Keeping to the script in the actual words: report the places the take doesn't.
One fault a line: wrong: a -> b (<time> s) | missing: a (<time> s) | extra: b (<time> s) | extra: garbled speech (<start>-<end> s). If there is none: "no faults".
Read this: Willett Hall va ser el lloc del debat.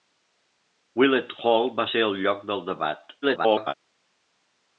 extra: garbled speech (3.2-3.7 s)